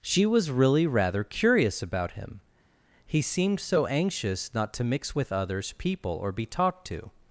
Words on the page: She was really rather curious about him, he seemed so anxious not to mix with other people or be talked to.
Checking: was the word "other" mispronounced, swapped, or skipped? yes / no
yes